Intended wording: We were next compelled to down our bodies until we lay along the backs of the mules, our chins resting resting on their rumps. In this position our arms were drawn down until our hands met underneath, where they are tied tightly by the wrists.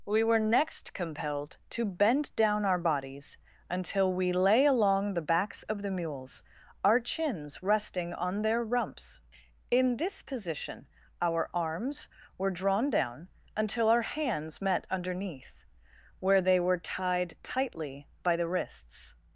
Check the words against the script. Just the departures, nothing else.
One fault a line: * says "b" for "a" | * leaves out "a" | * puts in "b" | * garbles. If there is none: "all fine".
* puts in "bend"
* leaves out "resting"
* says "were" for "are"